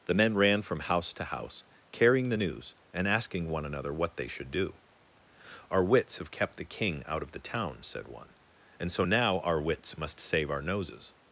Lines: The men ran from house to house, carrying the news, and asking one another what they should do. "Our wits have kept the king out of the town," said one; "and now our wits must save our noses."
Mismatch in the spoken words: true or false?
true